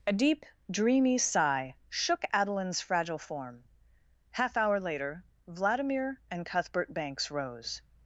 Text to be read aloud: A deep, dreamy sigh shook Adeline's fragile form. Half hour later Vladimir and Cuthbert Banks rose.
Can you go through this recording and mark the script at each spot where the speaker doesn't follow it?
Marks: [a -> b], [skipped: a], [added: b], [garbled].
A deep, dreamy sigh shook Adeline's fragile form. Half hour later Vladimir and Cuthbert Banks rose.